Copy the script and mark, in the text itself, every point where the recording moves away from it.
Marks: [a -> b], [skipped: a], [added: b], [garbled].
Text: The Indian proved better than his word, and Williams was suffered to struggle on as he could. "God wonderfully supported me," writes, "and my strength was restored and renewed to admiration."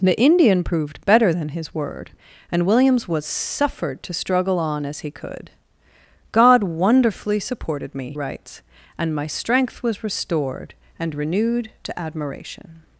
The Indian proved better than his word, and Williams was suffered to struggle on as he could. "God wonderfully supported me," writes, "and my strength was restored and renewed to admiration."